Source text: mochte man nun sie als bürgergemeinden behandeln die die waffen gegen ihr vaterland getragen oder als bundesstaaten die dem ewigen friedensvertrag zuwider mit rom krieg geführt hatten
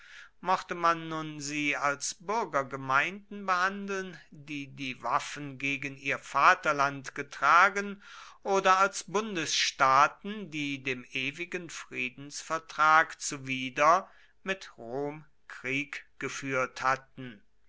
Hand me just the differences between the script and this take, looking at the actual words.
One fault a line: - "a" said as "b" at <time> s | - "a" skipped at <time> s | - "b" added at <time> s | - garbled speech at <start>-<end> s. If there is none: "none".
none